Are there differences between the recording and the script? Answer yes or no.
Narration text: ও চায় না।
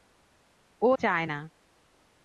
no